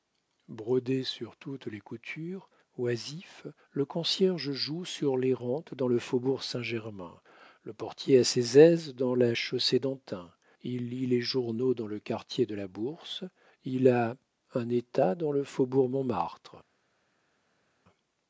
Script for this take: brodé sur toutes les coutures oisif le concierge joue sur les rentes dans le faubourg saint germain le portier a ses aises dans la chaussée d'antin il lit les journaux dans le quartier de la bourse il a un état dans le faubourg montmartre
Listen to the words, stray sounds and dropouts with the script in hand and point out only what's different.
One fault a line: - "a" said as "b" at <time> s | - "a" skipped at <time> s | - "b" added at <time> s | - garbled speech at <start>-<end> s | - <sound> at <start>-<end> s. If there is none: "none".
none